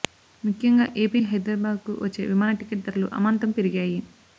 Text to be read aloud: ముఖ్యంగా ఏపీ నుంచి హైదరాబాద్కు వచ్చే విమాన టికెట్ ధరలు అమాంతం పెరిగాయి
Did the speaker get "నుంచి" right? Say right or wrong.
wrong